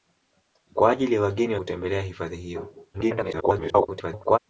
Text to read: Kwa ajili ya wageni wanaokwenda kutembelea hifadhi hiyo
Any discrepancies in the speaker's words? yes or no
yes